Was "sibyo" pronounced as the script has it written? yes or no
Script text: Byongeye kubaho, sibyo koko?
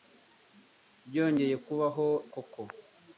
no